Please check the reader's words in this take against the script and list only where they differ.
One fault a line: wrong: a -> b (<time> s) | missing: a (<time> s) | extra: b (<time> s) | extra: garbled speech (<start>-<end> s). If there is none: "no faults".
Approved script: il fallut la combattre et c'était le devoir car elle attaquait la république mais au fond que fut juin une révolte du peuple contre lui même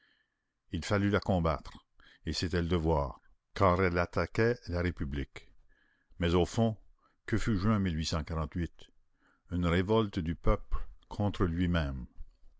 no faults